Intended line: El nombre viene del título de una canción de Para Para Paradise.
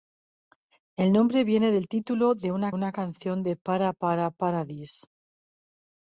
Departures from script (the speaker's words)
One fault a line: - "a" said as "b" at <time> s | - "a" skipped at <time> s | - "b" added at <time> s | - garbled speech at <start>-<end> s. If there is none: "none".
- "una" added at 2.7 s